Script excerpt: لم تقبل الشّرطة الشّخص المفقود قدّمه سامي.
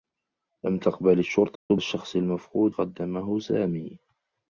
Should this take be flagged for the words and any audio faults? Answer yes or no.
yes